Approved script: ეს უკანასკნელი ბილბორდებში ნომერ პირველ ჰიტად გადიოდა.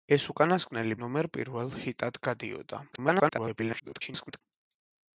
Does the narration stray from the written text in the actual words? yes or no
yes